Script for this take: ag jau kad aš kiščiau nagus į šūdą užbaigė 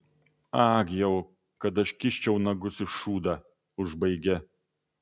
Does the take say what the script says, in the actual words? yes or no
yes